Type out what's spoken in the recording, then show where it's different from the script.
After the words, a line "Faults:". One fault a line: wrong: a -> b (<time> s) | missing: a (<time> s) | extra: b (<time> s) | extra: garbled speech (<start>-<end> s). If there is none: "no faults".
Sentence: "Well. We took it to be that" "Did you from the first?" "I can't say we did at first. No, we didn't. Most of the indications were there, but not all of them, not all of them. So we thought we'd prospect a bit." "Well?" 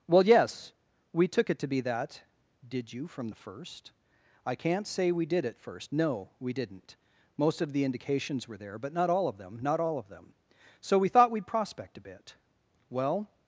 "Well, yes. We took it to be that" "Did you from the first?" "I can't say we did at first. No, we didn't. Most of the indications were there, but not all of them, not all of them. So we thought we'd prospect a bit." "Well?"
Faults:
extra: yes (0.2 s)